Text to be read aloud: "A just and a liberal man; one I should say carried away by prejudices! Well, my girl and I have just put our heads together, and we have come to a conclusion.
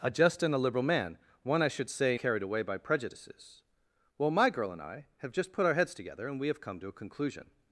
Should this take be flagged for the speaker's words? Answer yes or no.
no